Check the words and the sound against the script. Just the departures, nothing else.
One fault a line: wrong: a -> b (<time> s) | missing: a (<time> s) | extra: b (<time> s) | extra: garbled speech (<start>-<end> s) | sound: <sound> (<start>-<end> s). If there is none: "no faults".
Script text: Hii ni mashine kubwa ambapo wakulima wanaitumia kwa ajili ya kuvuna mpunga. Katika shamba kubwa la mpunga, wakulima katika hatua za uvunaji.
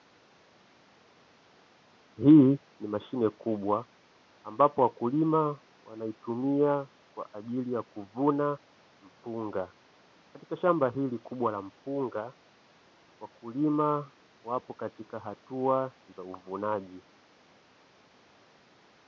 extra: hili (10.9 s)
extra: wapo (14.4 s)